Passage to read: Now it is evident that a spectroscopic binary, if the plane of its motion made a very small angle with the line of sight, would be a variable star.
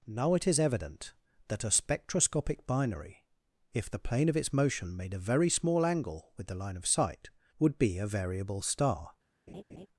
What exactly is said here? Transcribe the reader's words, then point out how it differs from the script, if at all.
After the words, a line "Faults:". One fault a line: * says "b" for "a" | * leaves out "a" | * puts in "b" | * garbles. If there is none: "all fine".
Now it is evident that a spectroscopic binary, if the plane of its motion made a very small angle with the line of sight, would be a variable star.
Faults:
all fine